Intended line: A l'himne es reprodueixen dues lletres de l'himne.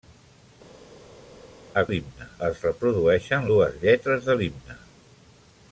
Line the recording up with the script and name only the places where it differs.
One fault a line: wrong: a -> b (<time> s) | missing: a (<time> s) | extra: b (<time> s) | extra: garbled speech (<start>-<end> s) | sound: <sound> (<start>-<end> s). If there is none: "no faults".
no faults